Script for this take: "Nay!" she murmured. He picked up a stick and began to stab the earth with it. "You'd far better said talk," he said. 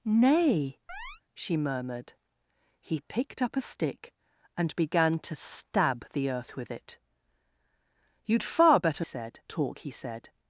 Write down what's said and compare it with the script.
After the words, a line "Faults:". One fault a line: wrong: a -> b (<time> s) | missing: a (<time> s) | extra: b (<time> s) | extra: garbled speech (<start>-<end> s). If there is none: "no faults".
"Nay!" she murmured. He picked up a stick and began to stab the earth with it. "You'd far better said talk," he said.
Faults:
no faults